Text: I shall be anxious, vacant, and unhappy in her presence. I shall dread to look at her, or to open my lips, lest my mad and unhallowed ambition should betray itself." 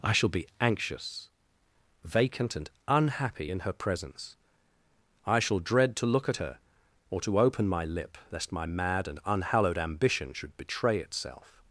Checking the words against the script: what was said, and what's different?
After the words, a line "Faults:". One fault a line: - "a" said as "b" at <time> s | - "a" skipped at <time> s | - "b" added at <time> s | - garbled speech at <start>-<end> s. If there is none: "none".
I shall be anxious, vacant, and unhappy in her presence. I shall dread to look at her, or to open my lip, lest my mad and unhallowed ambition should betray itself."
Faults:
- "lips" said as "lip" at 7.8 s